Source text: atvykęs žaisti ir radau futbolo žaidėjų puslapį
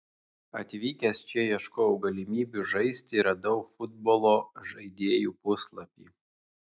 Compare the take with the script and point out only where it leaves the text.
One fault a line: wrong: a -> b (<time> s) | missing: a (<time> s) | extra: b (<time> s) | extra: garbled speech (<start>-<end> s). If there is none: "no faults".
extra: čia ieškojau galimybių (1.3 s)